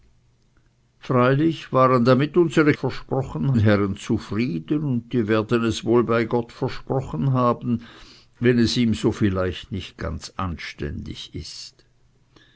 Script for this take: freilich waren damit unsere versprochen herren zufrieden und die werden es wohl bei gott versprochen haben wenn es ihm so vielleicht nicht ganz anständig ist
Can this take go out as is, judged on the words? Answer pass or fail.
pass